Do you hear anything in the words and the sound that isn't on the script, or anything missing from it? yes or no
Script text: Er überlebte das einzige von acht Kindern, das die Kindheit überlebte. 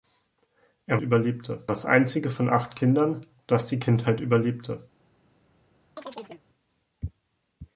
yes